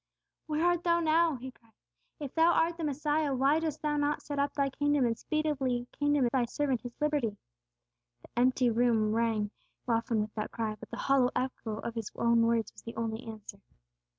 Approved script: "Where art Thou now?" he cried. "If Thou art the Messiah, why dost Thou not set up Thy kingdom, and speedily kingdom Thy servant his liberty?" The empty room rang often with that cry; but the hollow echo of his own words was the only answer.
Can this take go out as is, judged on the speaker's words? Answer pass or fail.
pass